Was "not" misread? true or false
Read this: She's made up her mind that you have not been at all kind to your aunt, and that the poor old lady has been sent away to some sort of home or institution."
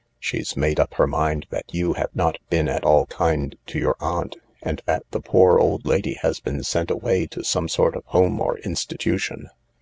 false